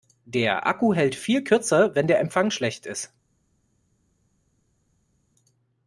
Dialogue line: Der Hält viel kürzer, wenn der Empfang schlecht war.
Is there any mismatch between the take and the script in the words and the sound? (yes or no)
yes